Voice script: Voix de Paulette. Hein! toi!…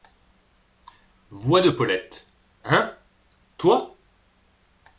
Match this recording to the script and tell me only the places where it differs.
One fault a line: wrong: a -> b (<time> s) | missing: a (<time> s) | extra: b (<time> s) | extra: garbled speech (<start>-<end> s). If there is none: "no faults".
no faults